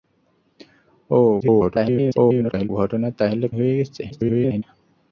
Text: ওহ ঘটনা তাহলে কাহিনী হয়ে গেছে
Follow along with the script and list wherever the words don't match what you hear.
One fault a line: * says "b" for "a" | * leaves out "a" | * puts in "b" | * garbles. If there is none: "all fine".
* garbles
* leaves out "কাহিনী"
* garbles